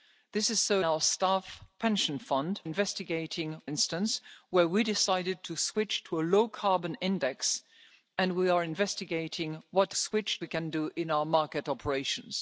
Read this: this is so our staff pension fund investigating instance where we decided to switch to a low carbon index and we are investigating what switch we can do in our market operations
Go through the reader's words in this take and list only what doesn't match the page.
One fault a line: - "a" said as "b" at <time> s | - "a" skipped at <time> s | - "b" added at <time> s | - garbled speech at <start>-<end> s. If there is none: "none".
none